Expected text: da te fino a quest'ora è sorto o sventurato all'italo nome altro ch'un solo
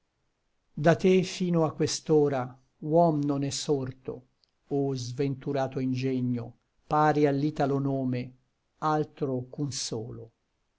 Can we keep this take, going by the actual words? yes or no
no